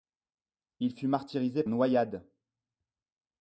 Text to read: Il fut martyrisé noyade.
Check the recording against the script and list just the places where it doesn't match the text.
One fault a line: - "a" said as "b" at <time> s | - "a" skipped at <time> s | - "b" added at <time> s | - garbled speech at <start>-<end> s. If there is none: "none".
none